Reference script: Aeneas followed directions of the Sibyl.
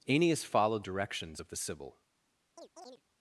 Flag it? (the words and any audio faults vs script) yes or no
yes